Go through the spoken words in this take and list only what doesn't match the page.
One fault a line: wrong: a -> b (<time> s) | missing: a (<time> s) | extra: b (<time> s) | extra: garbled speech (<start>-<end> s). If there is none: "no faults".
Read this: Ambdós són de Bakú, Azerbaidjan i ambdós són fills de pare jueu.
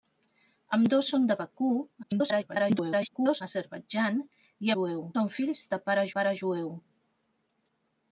extra: garbled speech (2.0-3.4 s)
wrong: ambdós -> jueu (4.8 s)
extra: pare (6.2 s)